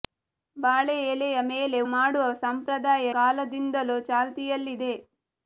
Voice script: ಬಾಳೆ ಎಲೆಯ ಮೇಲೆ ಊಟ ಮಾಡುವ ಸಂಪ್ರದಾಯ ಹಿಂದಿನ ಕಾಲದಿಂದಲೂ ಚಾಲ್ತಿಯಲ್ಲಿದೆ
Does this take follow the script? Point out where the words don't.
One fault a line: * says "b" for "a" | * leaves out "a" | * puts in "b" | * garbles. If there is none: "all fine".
* leaves out "ಊಟ"
* leaves out "ಹಿಂದಿನ"